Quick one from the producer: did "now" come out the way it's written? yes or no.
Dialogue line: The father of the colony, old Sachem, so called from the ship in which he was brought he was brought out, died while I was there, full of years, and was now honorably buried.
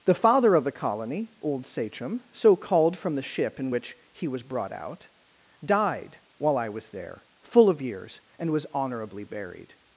no